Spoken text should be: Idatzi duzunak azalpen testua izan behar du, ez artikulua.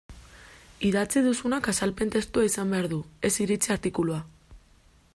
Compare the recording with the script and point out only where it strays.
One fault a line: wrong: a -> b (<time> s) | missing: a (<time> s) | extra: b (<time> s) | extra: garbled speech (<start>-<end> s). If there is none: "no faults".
extra: iritzi (3.5 s)